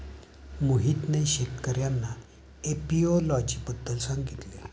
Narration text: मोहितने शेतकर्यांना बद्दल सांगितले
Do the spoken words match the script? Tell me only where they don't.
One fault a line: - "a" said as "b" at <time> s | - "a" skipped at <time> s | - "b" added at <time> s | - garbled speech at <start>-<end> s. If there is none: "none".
- "एपियोलॉजी" added at 2.6 s